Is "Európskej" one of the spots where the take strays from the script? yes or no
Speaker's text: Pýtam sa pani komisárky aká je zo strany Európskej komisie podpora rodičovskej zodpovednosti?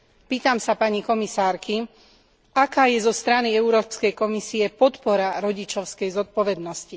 no